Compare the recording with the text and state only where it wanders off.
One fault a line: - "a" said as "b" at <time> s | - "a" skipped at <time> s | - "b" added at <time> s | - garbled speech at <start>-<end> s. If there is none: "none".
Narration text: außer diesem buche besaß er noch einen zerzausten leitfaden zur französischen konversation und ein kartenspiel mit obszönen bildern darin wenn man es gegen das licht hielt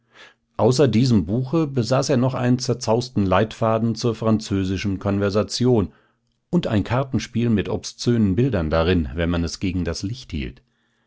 none